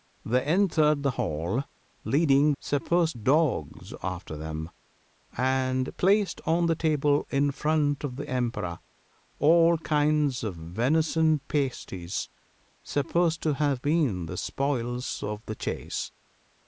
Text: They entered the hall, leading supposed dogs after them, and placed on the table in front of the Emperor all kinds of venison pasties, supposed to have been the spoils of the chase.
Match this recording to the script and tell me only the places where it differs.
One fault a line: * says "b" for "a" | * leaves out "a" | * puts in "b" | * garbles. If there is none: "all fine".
all fine